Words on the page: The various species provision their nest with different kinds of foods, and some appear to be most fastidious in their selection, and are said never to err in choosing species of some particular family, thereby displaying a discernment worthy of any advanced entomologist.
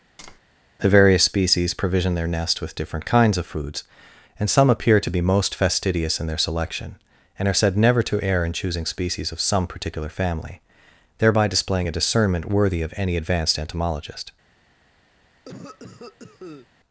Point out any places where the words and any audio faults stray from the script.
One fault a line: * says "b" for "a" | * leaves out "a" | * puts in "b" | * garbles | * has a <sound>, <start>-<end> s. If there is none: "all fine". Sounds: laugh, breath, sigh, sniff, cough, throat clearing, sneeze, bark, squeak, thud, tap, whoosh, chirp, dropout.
* has a tap, 0.2-0.4 s
* has a cough, 15.5-16.7 s